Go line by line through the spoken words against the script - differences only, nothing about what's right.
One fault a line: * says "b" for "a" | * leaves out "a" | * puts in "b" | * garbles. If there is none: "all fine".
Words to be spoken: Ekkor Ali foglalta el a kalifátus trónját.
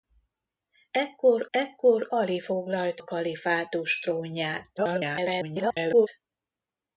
* puts in "ekkor"
* leaves out "el"
* garbles